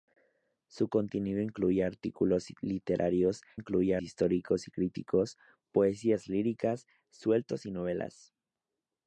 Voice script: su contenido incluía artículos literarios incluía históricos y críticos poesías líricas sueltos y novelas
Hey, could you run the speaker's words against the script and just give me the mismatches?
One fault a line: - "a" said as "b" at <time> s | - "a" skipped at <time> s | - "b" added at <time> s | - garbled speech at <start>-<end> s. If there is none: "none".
none